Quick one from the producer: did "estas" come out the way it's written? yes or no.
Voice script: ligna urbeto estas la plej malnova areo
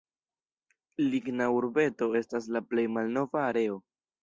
yes